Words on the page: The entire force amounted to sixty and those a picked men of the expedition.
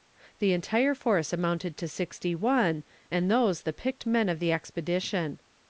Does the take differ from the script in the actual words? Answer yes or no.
yes